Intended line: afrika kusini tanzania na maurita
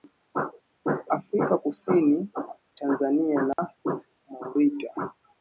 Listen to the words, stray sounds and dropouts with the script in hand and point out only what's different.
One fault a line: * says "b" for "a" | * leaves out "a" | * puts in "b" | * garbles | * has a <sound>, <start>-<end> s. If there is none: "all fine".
* has a dropout, 3.5-3.6 s